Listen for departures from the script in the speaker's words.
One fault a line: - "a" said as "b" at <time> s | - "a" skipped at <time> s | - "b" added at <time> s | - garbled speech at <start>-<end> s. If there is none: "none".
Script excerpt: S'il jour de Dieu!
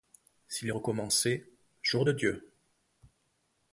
- "recommençait" added at 0.7 s